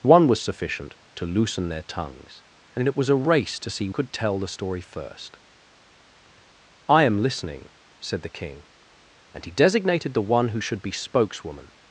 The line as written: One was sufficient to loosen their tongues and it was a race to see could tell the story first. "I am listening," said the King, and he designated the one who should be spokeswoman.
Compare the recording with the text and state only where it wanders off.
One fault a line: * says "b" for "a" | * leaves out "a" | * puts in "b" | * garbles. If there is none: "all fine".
all fine